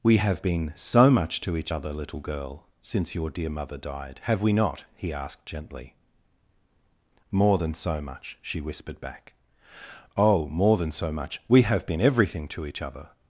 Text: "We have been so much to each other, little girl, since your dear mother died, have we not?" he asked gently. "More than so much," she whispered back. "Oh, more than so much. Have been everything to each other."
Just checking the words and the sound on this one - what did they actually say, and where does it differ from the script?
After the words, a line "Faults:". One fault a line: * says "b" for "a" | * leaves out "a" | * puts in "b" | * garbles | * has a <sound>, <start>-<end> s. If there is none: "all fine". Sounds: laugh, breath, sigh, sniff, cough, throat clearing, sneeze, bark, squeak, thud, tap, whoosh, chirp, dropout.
"We have been so much to each other, little girl, since your dear mother died, have we not?" he asked gently. "More than so much," she whispered back. "Oh, more than so much. We have been everything to each other."
Faults:
* puts in "We"